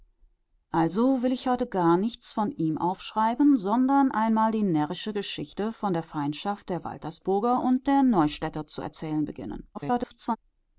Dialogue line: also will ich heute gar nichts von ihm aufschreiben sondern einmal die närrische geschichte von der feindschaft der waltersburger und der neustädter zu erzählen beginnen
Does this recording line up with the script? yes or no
no